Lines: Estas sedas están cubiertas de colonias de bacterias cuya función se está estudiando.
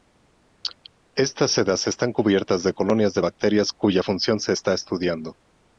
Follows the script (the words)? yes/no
yes